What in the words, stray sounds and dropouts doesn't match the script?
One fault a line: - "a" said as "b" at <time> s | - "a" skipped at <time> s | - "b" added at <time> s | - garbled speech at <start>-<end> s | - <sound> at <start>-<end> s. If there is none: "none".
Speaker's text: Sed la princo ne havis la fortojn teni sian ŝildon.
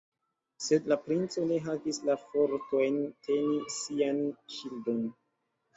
none